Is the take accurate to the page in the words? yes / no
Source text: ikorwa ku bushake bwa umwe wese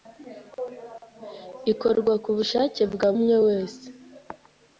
yes